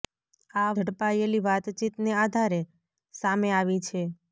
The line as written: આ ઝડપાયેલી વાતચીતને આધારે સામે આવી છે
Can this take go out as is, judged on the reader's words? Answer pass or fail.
pass